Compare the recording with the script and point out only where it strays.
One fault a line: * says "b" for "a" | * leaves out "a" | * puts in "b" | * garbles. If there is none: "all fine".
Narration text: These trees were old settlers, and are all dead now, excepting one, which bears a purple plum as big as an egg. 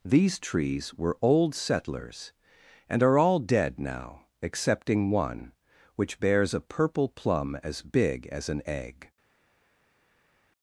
all fine